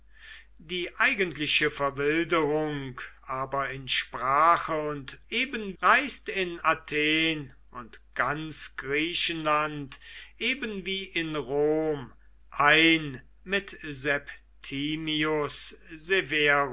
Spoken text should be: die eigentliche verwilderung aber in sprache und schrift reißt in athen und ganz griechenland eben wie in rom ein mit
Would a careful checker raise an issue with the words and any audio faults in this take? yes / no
yes